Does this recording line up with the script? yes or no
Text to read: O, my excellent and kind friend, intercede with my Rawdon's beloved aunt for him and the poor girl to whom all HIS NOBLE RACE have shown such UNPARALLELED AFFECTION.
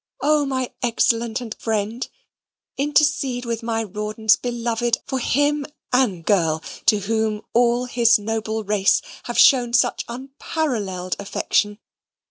no